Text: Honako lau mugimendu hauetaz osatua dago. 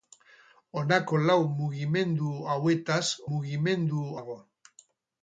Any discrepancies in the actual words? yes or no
yes